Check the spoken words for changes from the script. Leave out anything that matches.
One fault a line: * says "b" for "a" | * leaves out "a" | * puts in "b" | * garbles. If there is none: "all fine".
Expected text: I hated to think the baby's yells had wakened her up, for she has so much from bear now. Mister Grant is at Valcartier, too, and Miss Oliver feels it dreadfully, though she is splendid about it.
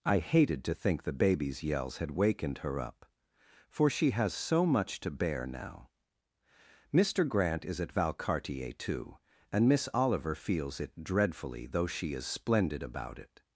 * says "to" for "from"